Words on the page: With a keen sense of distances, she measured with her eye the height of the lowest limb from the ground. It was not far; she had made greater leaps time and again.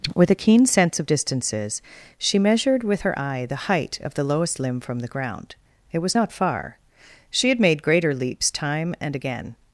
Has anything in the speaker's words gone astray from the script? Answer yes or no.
no